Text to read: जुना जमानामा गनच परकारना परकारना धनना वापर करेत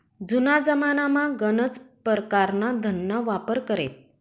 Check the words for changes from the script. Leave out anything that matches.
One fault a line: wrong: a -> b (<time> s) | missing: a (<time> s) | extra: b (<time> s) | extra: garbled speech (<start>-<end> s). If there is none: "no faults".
missing: परकारना (2.7 s)